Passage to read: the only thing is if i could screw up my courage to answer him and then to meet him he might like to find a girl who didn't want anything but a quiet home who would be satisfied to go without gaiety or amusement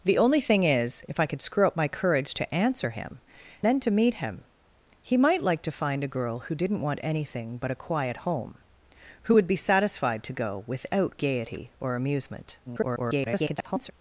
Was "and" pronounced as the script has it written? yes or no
no